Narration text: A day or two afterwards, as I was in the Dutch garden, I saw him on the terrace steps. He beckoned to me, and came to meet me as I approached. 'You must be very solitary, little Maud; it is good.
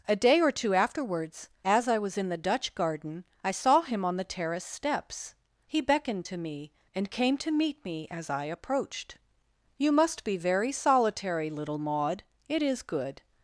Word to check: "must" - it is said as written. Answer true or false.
true